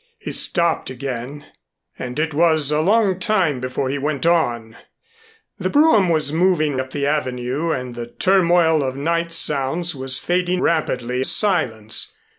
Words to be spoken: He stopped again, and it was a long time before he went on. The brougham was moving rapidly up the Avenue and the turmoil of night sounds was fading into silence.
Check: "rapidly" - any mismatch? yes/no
yes